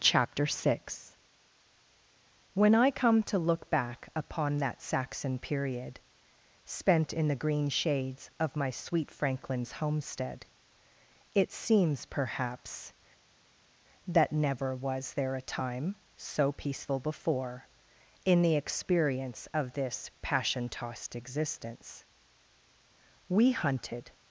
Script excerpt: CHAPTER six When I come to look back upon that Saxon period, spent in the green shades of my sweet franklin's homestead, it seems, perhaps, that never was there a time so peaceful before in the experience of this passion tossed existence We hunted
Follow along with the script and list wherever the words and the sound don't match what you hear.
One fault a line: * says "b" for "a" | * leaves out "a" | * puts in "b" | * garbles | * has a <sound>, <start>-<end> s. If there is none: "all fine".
all fine